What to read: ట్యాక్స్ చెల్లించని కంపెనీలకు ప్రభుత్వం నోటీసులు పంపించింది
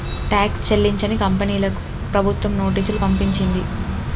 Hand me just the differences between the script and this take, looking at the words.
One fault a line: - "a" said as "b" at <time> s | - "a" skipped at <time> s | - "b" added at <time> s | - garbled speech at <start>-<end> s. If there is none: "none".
none